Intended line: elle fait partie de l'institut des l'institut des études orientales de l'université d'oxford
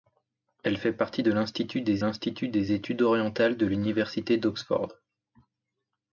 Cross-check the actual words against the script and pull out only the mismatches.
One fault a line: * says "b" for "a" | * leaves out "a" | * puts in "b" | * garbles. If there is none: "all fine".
all fine